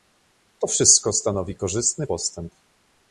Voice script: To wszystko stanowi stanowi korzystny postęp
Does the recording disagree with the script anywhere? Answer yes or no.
yes